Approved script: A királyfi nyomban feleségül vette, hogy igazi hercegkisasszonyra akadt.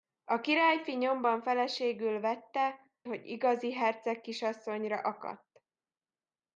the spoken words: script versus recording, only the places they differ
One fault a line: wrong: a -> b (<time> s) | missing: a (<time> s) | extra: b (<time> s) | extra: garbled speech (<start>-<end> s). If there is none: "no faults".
no faults